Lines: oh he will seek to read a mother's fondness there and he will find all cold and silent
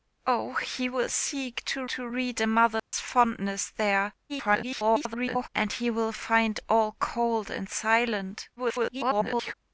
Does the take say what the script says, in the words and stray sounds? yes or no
no